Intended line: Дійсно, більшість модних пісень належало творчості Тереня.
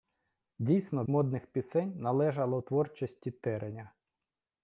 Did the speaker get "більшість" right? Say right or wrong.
wrong